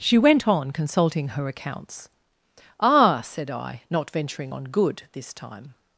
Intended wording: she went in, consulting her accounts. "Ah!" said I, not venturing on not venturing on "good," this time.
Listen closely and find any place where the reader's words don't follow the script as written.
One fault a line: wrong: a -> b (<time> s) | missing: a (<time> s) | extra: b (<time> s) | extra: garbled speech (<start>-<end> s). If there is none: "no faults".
wrong: in -> on (0.5 s)
missing: not venturing on (4.6 s)